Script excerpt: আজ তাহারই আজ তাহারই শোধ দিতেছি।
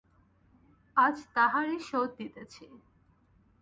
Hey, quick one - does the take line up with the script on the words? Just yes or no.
no